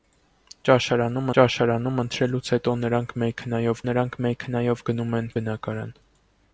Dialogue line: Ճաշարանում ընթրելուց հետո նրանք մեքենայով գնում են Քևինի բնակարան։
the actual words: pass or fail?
fail